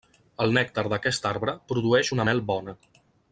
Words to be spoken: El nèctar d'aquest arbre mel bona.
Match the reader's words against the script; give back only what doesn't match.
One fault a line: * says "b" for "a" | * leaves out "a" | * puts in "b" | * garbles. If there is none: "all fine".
* puts in "produeix una"